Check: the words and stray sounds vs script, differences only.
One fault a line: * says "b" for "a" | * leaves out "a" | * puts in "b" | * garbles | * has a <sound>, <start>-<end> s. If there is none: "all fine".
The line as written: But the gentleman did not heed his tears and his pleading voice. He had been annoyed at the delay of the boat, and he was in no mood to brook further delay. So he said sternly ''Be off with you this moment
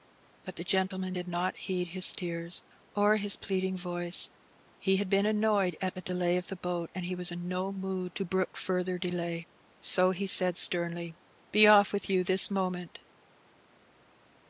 * says "or" for "and"